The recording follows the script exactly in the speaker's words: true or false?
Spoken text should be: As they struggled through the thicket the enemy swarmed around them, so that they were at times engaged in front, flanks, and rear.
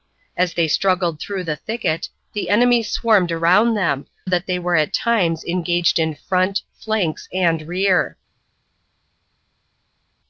false